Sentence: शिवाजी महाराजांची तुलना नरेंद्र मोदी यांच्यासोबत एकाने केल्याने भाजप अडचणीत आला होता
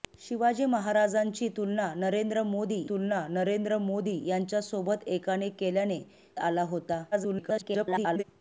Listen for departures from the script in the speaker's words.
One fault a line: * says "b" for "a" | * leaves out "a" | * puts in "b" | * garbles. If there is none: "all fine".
* puts in "तुलना नरेंद्र मोदी"
* leaves out "भाजप अडचणीत"
* garbles